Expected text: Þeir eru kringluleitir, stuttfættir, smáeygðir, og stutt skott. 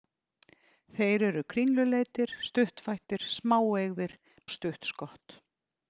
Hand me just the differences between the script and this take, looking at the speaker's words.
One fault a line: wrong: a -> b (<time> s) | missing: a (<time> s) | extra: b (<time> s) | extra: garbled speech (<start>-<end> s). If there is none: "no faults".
no faults